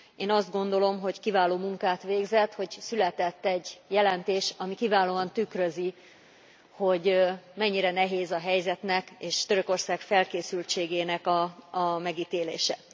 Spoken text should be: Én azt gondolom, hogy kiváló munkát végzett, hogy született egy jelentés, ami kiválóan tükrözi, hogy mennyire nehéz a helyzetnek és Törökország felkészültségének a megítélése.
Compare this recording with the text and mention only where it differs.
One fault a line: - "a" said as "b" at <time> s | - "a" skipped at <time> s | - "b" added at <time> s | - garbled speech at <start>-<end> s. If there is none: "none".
none